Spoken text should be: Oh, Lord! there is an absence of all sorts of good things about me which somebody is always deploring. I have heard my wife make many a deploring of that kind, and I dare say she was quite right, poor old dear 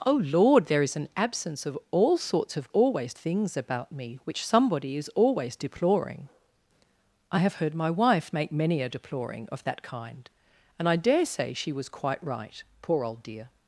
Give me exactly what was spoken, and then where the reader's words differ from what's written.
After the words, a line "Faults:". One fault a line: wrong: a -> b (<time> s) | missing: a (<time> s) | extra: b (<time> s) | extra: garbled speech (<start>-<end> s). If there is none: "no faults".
Oh, Lord! there is an absence of all sorts of always things about me which somebody is always deploring. I have heard my wife make many a deploring of that kind, and I dare say she was quite right, poor old dear
Faults:
wrong: good -> always (2.7 s)